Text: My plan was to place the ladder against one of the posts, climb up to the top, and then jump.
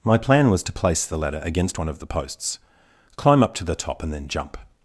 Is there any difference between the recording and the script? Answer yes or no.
no